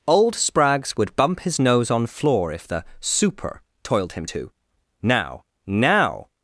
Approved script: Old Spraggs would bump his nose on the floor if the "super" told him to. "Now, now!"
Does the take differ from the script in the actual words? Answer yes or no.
yes